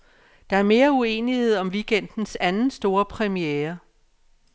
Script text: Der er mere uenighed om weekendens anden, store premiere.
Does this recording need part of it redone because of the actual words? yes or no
no